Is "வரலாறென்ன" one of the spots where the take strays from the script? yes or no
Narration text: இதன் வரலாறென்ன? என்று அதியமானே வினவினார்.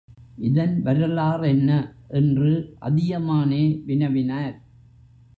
no